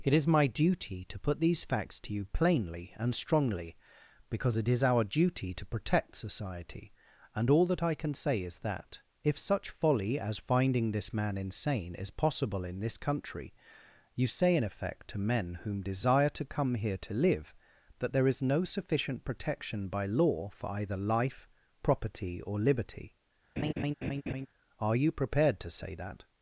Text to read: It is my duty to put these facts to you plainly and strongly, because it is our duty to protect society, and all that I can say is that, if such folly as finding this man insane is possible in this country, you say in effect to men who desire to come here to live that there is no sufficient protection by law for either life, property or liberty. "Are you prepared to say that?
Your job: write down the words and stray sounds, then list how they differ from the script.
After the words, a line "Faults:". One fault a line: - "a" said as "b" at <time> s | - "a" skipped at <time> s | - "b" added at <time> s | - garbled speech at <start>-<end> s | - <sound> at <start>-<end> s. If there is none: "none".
It is my duty to put these facts to you plainly and strongly, because it is our duty to protect society, and all that I can say is that, if such folly as finding this man insane is possible in this country, you say in effect to men whom desire to come here to live that there is no sufficient protection by law for either life, property or liberty. "Are you prepared to say that?
Faults:
- "who" said as "whom" at 15.7 s
- laugh at 23.6-24.5 s